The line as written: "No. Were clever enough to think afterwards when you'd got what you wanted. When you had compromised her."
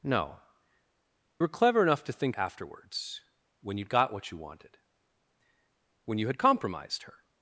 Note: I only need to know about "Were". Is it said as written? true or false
true